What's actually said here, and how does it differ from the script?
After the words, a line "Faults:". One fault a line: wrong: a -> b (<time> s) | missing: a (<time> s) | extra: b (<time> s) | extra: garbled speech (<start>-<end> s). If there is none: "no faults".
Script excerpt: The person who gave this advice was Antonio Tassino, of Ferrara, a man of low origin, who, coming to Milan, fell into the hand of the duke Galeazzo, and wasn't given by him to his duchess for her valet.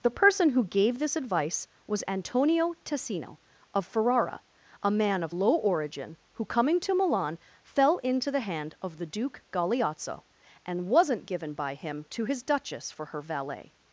The person who gave this advice was Antonio Tassino, of Ferrara, a man of low origin, who, coming to Milan, fell into the hand of the duke Galeazzo, and wasn't given by him to his duchess for her valet.
Faults:
no faults